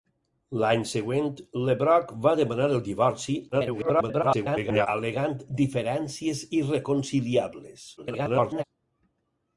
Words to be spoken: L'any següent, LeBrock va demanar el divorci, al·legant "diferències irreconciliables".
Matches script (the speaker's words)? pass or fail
fail